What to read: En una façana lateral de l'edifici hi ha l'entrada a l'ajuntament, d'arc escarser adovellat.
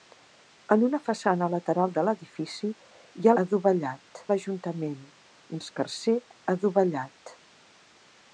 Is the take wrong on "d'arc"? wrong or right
wrong